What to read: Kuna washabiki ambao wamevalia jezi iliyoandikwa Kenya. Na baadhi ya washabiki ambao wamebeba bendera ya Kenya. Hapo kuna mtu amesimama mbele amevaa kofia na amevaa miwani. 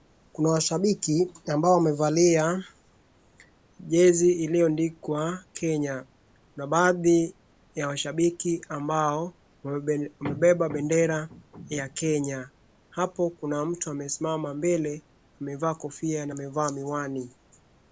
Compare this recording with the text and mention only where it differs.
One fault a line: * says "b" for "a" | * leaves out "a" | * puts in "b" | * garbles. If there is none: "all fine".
all fine